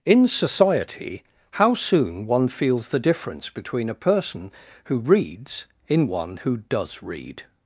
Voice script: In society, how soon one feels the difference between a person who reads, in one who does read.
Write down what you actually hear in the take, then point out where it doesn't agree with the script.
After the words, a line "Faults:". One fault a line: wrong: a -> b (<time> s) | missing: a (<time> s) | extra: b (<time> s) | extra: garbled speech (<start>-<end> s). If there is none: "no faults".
In society, how soon one feels the difference between a person who reads, in one who does read.
Faults:
no faults